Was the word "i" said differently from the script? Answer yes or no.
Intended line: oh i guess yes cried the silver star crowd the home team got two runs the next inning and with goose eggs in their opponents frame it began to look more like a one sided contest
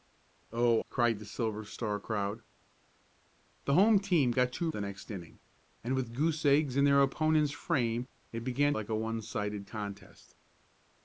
yes